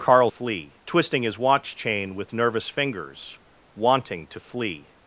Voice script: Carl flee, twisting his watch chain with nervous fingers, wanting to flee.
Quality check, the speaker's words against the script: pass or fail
pass